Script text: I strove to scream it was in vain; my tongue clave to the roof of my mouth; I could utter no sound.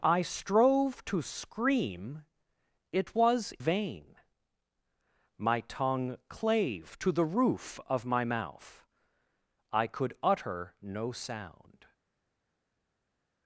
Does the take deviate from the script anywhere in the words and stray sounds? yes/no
yes